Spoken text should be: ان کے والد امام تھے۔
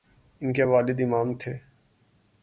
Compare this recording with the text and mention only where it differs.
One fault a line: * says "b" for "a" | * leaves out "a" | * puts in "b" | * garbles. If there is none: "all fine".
all fine